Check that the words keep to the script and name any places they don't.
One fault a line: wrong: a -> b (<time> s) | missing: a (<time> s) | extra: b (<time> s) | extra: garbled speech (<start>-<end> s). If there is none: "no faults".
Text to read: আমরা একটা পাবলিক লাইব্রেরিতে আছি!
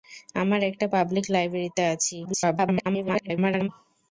extra: garbled speech (2.2-3.7 s)